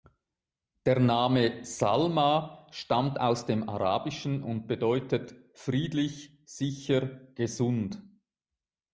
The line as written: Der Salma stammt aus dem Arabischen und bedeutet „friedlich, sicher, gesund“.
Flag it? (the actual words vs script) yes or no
yes